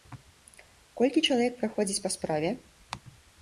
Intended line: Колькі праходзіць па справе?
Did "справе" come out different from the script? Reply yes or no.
no